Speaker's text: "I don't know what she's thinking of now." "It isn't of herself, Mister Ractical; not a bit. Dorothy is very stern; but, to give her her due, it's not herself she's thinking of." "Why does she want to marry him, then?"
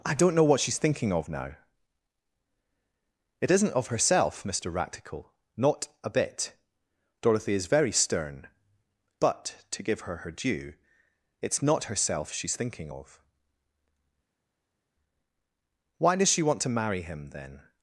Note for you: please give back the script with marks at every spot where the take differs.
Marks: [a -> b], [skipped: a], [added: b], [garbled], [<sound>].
"I don't know what she's thinking of now." "It isn't of herself, Mister Ractical; not a bit. Dorothy is very stern; but, to give her her due, it's not herself she's thinking of." "Why does she want to marry him, then?"